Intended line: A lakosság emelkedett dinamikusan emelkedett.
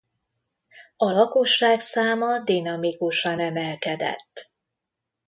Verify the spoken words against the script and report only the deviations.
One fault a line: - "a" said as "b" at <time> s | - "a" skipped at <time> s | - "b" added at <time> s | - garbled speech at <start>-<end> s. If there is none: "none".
- "emelkedett" said as "száma" at 1.8 s